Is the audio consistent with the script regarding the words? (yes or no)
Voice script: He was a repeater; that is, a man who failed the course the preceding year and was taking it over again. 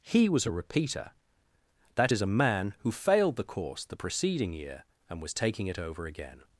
yes